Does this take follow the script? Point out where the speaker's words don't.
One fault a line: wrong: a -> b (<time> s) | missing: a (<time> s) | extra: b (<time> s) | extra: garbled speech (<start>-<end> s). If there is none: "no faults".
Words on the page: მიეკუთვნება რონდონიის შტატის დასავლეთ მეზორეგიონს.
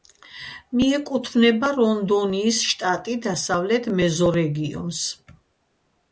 no faults